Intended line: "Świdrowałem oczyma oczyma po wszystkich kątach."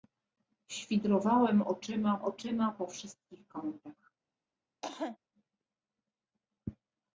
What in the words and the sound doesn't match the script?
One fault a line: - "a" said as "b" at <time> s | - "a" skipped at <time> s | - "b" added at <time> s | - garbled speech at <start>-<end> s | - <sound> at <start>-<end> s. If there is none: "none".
- cough at 4.8-5.2 s